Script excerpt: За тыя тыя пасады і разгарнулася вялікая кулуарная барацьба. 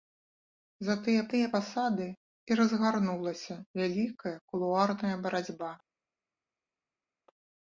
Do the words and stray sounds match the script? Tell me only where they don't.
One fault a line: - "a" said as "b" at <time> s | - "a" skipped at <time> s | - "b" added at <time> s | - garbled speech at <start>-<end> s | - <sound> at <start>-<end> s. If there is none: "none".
none